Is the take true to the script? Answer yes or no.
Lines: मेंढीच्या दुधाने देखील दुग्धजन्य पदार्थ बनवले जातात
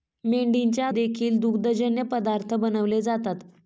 no